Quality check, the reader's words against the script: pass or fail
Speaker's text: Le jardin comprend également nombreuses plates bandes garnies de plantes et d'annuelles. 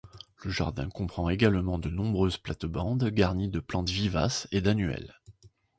fail